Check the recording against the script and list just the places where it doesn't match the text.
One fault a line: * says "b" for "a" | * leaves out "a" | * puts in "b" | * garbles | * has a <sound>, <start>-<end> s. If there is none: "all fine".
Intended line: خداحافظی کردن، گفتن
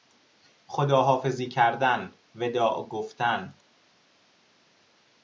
* puts in "وداع"